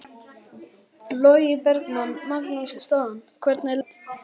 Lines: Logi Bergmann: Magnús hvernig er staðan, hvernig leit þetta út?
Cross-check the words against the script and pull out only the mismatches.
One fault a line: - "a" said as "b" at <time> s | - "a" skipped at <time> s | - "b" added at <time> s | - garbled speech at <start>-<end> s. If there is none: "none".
- "hvernig" skipped at 2.8 s
- "leit þetta" skipped at 3.8 s